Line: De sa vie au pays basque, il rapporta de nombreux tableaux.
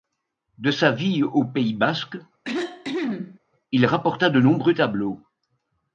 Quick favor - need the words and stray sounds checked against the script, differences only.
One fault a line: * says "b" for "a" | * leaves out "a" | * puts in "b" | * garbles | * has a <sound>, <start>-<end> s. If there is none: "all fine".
* has a cough, 2.4-3.4 s